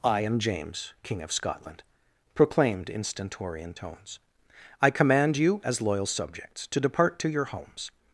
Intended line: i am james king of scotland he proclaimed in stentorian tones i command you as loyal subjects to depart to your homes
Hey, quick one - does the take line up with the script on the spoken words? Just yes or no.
no